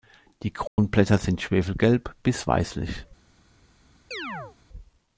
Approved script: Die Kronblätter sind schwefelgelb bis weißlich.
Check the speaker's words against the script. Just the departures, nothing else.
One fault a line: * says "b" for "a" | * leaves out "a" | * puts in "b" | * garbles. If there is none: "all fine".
all fine